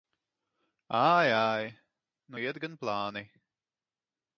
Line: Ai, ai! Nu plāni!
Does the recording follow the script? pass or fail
fail